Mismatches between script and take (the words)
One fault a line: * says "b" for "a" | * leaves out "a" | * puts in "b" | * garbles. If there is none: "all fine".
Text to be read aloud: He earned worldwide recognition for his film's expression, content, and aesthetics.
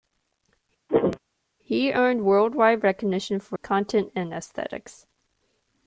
* leaves out "his film's expression"